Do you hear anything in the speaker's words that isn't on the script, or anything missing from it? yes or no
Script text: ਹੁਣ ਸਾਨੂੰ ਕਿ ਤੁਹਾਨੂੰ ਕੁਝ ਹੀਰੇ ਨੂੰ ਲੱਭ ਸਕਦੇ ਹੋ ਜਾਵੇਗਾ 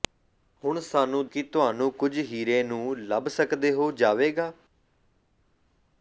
no